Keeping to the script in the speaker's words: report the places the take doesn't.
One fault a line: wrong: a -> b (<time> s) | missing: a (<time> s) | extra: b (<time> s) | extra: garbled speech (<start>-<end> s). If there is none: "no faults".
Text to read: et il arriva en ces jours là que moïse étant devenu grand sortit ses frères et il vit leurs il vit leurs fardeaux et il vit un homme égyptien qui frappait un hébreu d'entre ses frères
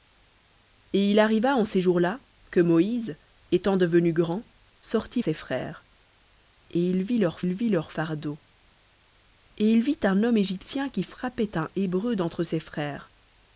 no faults